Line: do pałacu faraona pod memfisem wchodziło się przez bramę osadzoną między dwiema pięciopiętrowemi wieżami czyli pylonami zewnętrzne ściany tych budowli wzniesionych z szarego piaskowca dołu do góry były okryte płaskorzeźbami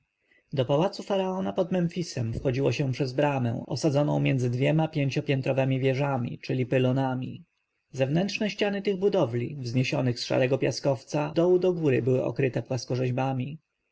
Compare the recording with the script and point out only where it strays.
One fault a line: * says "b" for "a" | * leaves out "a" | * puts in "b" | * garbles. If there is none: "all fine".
all fine